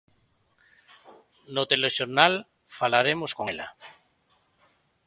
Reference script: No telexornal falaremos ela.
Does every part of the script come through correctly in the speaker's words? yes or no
no